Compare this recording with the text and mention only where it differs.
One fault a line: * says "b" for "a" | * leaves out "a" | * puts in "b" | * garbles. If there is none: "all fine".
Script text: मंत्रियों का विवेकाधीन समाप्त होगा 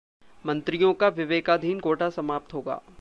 * puts in "कोटा"